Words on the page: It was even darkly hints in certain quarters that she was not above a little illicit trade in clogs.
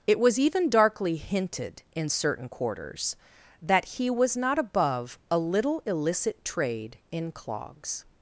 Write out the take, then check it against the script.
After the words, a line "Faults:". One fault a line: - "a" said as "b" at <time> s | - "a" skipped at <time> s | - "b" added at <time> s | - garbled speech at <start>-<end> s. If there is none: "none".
It was even darkly hinted in certain quarters that he was not above a little illicit trade in clogs.
Faults:
- "hints" said as "hinted" at 1.2 s
- "she" said as "he" at 3.9 s